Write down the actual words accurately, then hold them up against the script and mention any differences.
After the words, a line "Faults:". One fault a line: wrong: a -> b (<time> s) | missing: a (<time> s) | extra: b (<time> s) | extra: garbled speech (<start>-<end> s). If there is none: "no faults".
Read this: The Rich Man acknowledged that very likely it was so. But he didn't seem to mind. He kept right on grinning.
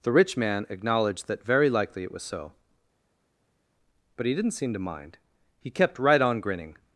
The Rich Man acknowledged that very likely it was so. But he didn't seem to mind. He kept right on grinning.
Faults:
no faults